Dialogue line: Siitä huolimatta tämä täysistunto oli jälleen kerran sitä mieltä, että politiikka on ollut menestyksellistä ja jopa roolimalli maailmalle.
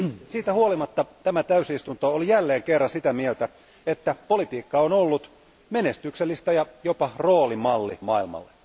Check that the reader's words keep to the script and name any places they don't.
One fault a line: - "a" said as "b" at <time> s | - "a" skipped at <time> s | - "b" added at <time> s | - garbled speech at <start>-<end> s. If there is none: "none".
none